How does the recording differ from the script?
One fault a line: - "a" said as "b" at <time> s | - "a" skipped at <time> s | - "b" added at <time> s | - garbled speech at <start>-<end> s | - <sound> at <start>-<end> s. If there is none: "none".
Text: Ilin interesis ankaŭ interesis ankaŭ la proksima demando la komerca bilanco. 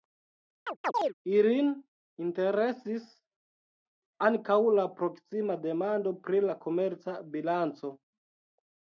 - chirp at 0.7-1.1 s
- "interesis ankaŭ" skipped at 4.6 s
- "pri" added at 6.3 s